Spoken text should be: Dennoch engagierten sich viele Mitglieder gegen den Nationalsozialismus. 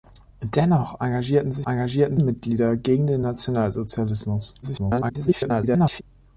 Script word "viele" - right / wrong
wrong